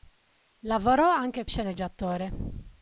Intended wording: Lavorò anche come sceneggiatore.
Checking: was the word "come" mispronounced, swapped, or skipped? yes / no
yes